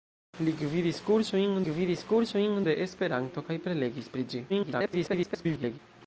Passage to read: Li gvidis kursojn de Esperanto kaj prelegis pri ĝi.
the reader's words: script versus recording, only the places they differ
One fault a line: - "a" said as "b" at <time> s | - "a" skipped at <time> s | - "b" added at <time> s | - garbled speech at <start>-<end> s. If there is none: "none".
- "gvidis kursojn" added at 1.7 s
- garbled speech at 4.5-5.8 s